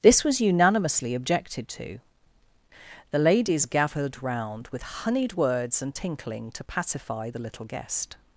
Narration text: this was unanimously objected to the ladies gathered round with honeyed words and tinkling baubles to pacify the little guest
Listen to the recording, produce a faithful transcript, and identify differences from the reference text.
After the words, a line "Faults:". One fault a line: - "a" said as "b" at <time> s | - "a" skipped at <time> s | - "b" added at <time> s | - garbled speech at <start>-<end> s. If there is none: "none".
this was unanimously objected to the ladies gathered round with honeyed words and tinkling to pacify the little guest
Faults:
- "baubles" skipped at 6.5 s